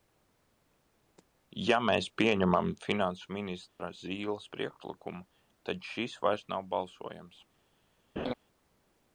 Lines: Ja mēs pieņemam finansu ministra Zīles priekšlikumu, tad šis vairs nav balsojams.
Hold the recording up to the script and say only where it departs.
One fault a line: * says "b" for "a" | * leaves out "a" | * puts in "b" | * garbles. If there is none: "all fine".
all fine